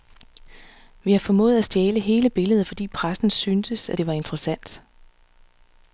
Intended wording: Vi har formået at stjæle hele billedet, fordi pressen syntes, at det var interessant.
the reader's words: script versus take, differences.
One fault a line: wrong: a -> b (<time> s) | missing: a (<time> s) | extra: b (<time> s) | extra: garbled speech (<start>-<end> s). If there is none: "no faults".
no faults